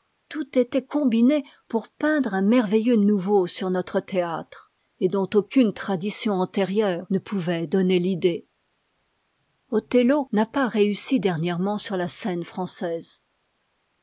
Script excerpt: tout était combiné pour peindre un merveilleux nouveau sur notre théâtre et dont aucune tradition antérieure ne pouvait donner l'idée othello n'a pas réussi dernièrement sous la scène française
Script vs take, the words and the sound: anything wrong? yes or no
yes